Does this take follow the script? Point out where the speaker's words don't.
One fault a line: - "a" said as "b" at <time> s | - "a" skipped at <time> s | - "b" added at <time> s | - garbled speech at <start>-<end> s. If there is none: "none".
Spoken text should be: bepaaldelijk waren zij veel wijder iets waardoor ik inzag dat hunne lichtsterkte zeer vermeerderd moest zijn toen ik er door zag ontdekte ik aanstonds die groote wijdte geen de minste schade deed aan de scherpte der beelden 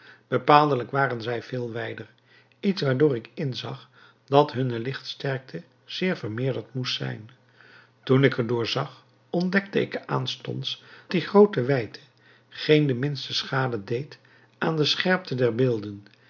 none